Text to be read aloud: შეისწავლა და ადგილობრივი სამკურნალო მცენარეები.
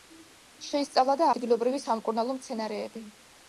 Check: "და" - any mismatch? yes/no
no